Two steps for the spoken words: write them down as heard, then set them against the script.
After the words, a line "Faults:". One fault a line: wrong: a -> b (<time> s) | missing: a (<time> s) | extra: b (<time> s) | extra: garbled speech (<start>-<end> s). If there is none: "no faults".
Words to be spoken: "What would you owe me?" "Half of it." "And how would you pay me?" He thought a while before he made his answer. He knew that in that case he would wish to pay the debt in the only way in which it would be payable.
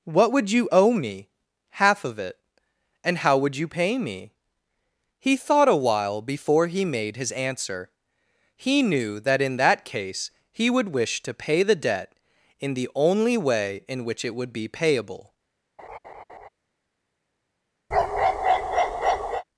"What would you owe me?" "Half of it." "And how would you pay me?" He thought a while before he made his answer. He knew that in that case he would wish to pay the debt in the only way in which it would be payable.
Faults:
no faults